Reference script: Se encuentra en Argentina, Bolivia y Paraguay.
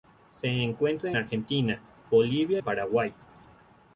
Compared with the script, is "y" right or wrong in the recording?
wrong